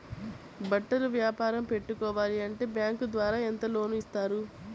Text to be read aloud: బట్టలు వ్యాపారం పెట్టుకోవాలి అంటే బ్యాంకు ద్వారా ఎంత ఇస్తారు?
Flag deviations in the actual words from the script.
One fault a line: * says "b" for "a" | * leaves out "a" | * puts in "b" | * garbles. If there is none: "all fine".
* puts in "లోన్"